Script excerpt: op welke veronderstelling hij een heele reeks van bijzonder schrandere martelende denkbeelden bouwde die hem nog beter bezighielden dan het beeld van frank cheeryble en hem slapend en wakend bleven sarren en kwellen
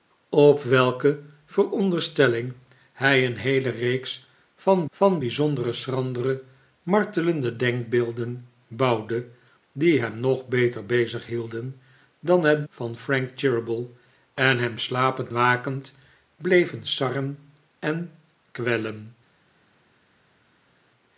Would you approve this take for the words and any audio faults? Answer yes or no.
no